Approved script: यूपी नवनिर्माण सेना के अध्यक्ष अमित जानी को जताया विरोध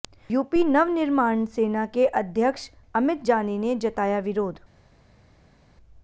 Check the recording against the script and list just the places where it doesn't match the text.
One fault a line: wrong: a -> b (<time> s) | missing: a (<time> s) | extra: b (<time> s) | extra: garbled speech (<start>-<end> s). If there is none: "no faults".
wrong: को -> ने (3.6 s)